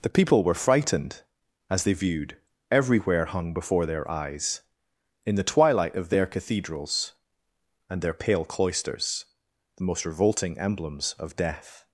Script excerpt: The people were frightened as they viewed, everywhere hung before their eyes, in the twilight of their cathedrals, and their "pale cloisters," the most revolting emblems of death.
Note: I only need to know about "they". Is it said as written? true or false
true